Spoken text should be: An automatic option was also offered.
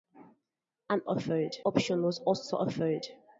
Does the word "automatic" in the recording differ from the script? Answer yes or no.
yes